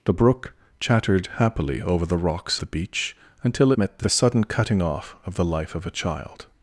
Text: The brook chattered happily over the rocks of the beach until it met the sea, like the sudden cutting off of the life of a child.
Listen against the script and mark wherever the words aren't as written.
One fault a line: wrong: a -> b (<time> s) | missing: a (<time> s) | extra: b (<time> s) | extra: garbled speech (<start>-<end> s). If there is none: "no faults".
missing: of (2.6 s)
missing: it (3.7 s)
missing: sea like (4.0 s)